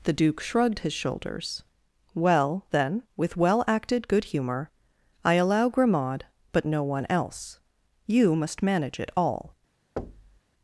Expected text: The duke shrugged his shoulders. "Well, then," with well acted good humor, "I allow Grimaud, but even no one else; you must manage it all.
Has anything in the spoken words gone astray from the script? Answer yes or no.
yes